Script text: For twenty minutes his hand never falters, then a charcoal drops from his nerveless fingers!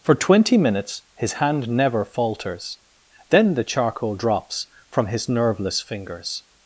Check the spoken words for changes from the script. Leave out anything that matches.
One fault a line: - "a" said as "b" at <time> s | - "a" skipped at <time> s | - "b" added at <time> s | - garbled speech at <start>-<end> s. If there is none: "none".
- "a" said as "the" at 3.5 s